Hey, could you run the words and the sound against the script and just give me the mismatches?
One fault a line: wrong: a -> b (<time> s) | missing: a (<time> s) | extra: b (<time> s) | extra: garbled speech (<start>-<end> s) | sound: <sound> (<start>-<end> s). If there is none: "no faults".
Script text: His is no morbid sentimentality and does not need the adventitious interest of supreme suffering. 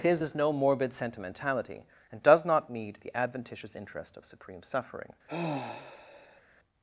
sound: sigh (5.3-6.4 s)